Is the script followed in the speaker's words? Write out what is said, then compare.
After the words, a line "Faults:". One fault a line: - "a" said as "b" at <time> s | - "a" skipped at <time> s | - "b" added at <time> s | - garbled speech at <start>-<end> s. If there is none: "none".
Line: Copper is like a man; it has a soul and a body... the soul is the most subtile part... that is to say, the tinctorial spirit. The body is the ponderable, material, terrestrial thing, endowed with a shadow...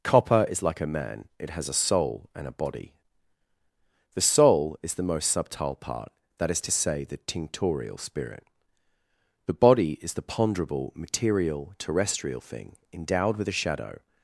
Copper is like a man; it has a soul and a body... the soul is the most subtile part... that is to say, the tinctorial spirit. The body is the ponderable, material, terrestrial thing, endowed with a shadow...
Faults:
none